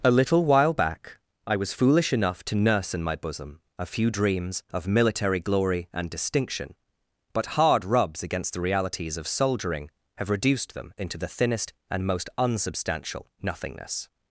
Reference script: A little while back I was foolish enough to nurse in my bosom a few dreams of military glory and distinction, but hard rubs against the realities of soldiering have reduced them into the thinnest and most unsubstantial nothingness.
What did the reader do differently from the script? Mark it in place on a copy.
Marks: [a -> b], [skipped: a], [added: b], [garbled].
A little while back I was foolish enough to nurse in my bosom a few dreams of military glory and distinction, but hard rubs against the realities of soldiering have reduced them into the thinnest and most unsubstantial nothingness.